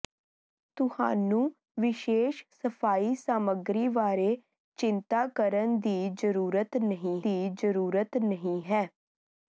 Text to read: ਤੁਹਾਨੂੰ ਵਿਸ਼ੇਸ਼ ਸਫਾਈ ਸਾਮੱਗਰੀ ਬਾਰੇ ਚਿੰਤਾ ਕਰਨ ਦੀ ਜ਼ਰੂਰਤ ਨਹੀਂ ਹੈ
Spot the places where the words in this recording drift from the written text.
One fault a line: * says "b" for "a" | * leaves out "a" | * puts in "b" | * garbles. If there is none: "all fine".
* puts in "ਦੀ ਜ਼ਰੂਰਤ ਨਹੀਂ"